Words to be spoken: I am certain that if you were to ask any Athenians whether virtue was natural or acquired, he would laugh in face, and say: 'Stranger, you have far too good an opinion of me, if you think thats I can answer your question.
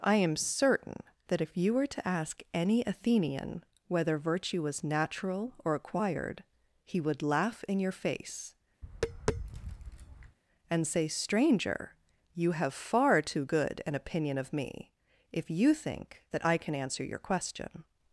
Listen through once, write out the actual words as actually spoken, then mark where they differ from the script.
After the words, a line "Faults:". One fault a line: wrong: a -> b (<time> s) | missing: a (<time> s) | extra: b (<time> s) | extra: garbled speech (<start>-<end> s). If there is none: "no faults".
I am certain that if you were to ask any Athenian whether virtue was natural or acquired, he would laugh in your face, and say: 'Stranger, you have far too good an opinion of me, if you think that I can answer your question.
Faults:
wrong: Athenians -> Athenian (2.9 s)
extra: your (7.8 s)
wrong: thats -> that (16.3 s)